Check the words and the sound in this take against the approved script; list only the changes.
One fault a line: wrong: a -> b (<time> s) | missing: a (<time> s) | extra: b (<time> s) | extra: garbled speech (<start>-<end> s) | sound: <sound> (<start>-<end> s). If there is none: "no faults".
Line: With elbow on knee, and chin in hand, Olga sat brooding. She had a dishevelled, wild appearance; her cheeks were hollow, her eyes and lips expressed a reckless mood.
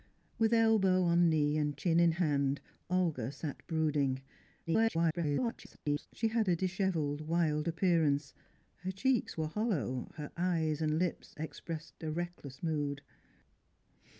extra: garbled speech (4.7-6.1 s)